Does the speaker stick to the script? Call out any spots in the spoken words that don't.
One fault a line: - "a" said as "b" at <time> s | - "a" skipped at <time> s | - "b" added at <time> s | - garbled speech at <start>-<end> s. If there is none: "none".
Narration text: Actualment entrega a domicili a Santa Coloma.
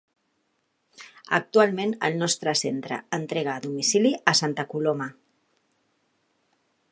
- "el nostre centre" added at 2.1 s